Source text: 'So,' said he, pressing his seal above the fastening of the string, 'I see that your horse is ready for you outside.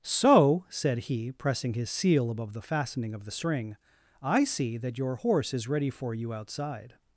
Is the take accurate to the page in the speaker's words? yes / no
yes